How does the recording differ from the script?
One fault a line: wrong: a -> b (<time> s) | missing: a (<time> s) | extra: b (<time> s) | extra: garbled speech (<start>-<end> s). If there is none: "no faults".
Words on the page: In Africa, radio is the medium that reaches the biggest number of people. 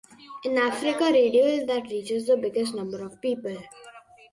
missing: the medium (1.7 s)